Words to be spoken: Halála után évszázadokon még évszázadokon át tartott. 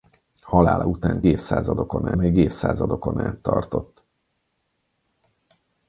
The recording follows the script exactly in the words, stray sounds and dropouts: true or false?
true